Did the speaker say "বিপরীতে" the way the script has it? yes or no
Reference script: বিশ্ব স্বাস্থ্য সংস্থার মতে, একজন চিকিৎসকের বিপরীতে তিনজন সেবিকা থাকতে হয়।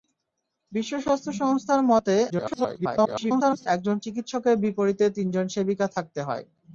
yes